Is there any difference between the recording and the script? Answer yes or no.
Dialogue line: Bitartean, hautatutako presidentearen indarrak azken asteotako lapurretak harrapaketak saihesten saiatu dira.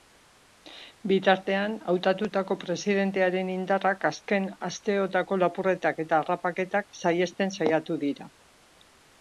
yes